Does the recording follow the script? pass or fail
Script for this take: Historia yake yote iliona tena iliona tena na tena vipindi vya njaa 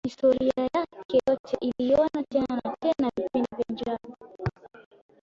fail